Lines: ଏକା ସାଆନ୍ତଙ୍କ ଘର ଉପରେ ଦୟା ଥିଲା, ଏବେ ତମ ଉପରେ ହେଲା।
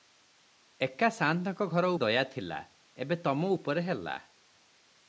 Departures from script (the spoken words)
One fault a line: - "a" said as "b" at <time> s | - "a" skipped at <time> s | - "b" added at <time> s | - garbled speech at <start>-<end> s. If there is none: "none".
- "ଉପରେ" skipped at 1.9 s